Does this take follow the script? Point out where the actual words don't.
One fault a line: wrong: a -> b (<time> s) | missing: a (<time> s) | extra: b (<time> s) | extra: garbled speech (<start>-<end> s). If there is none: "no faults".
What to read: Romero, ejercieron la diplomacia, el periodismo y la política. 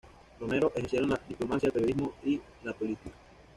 no faults